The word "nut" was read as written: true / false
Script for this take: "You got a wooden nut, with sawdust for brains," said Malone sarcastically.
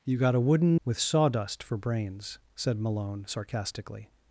false